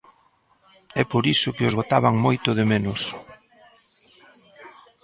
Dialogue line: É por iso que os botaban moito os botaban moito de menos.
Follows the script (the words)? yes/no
no